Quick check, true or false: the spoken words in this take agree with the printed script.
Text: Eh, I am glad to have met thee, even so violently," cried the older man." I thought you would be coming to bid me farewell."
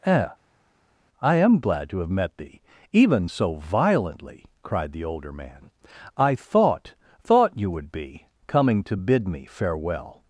false